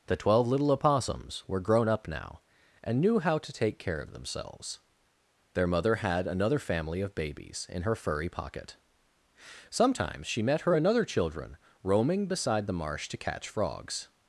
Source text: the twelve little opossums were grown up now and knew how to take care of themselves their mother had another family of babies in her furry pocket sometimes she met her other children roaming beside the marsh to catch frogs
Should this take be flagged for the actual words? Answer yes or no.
yes